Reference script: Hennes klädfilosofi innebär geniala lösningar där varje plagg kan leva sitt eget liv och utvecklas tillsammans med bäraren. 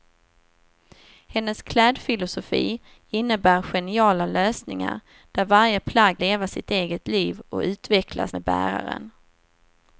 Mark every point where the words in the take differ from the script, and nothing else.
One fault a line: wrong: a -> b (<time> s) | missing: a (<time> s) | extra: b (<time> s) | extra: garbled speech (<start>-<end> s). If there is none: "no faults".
missing: kan (6.2 s)
missing: tillsammans (8.3 s)